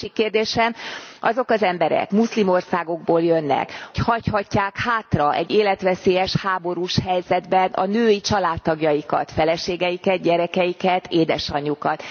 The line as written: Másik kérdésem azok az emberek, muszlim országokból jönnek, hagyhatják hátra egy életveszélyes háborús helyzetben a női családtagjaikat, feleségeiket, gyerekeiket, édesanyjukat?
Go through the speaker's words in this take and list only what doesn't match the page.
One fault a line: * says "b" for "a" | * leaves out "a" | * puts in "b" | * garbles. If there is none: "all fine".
all fine